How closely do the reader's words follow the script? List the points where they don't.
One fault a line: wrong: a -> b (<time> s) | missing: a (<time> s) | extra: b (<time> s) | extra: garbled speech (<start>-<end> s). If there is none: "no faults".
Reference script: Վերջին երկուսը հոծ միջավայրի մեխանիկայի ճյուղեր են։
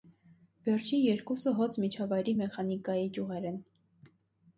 no faults